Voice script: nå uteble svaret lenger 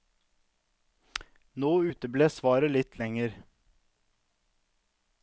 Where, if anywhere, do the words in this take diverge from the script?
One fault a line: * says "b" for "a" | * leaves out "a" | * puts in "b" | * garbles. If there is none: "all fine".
* puts in "litt"